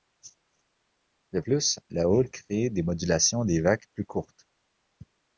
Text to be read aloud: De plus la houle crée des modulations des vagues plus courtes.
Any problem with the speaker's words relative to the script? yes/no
no